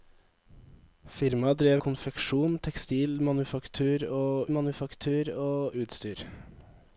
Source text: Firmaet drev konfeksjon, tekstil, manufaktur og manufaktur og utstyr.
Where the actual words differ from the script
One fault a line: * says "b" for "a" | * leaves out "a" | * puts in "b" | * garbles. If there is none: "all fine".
all fine